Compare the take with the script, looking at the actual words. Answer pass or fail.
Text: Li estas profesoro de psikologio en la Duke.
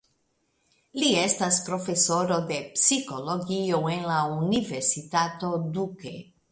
fail